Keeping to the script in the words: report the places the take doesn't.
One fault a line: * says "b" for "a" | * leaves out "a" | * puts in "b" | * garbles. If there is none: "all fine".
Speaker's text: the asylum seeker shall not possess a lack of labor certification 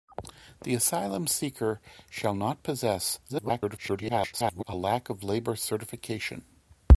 * garbles